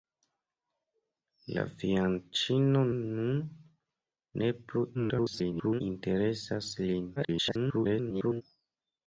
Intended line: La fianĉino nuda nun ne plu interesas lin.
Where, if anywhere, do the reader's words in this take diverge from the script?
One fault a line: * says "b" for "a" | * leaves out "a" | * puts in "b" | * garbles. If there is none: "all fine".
* leaves out "nuda"
* garbles
* garbles